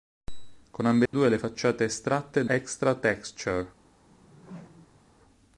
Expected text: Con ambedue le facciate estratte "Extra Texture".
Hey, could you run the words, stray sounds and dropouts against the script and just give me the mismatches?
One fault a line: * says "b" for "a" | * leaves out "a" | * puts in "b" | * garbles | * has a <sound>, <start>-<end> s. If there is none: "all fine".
* has a dropout, 1.1-1.1 s
* has a whoosh, 4.1-5.1 s